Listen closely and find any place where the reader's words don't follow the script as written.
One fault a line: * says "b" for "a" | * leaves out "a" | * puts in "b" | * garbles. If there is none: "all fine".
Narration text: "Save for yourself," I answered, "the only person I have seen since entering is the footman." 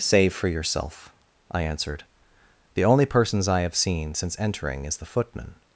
* says "persons" for "person"